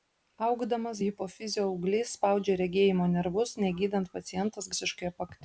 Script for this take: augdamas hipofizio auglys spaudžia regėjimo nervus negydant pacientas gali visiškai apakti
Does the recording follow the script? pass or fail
fail